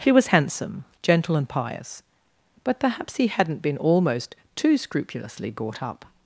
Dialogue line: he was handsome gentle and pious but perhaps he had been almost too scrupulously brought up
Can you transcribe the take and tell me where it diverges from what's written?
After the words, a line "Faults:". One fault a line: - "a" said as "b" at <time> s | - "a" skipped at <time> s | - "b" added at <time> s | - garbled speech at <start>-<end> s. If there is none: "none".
he was handsome gentle and pious but perhaps he hadn't been almost too scrupulously brought up
Faults:
- "had" said as "hadn't" at 3.3 s